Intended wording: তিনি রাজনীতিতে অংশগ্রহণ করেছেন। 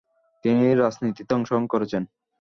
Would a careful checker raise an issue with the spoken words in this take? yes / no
no